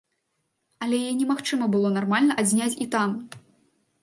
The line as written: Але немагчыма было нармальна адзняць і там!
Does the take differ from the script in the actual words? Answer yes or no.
yes